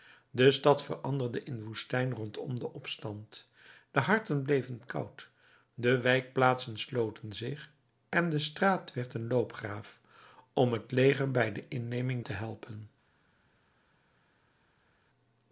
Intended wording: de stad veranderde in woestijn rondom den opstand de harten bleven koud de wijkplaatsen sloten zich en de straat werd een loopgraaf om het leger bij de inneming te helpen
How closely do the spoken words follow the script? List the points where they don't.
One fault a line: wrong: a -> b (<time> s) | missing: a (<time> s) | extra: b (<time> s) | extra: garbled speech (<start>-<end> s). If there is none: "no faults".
no faults